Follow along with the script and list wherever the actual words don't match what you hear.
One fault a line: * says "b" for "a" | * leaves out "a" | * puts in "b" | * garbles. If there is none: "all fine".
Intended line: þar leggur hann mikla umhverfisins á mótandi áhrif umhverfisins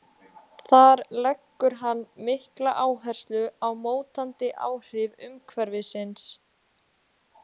* says "áherslu" for "umhverfisins"